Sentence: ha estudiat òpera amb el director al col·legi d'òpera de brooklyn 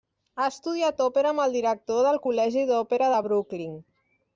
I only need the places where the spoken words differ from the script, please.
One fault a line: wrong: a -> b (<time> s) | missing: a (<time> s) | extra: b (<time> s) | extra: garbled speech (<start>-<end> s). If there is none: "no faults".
wrong: al -> del (2.1 s)